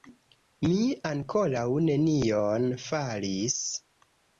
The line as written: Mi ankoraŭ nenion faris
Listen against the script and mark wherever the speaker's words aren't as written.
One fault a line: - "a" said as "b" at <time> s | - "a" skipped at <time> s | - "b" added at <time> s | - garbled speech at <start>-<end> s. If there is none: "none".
none